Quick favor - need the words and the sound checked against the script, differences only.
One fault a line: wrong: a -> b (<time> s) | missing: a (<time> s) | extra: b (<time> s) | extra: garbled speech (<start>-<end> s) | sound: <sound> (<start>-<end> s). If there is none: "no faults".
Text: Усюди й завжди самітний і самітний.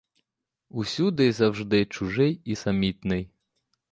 wrong: самітний -> чужий (1.9 s)